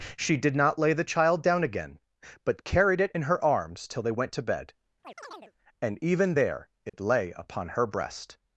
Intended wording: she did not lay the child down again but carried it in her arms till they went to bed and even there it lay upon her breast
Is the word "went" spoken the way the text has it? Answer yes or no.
yes